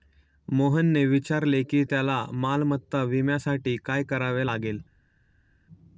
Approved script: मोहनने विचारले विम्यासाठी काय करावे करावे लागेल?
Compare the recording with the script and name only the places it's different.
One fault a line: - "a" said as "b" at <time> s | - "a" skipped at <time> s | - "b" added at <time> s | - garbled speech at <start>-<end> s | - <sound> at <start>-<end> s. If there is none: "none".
- "की त्याला मालमत्ता" added at 1.6 s
- "करावे" skipped at 4.5 s